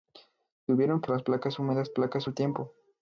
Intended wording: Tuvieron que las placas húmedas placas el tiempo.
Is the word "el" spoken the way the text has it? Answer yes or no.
yes